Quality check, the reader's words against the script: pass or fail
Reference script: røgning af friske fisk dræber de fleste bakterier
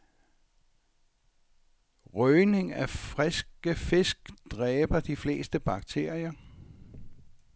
pass